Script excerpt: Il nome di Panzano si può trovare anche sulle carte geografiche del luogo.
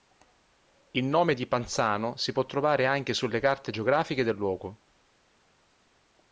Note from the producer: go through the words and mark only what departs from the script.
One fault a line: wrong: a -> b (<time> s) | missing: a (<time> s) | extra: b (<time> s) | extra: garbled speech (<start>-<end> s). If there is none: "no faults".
no faults